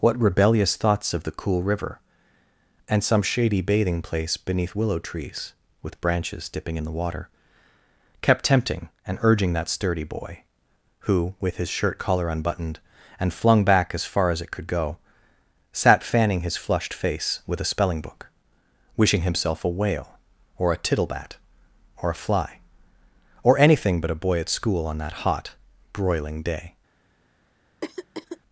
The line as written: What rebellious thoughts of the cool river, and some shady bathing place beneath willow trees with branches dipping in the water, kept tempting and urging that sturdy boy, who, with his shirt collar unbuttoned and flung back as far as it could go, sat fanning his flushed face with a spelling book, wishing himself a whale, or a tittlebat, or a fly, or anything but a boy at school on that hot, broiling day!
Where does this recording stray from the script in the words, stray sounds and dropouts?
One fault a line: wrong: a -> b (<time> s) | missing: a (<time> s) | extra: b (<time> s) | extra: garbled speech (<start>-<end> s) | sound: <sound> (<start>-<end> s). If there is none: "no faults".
sound: throat clearing (27.8-28.4 s)